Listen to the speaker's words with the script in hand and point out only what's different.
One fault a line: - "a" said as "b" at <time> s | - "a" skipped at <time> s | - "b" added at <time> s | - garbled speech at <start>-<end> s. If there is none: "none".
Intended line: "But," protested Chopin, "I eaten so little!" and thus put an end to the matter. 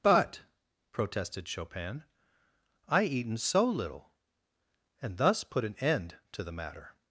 none